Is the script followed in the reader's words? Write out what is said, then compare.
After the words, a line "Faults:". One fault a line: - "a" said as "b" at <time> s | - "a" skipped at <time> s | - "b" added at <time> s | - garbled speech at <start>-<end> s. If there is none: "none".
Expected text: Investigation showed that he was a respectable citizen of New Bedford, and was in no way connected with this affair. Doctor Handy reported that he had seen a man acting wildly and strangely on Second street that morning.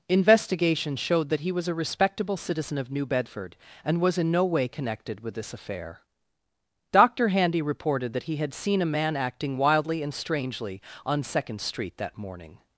Investigation showed that he was a respectable citizen of New Bedford, and was in no way connected with this affair. Doctor Handy reported that he had seen a man acting wildly and strangely on Second street that morning.
Faults:
none